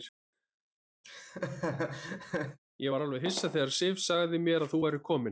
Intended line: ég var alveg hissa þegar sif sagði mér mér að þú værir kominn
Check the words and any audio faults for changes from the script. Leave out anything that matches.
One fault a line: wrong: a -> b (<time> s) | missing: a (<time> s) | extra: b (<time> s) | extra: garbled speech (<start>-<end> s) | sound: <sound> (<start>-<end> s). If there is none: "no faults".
sound: laugh (1.0-2.6 s)
missing: mér (4.7 s)